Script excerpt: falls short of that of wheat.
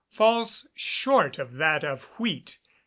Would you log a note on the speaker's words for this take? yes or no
no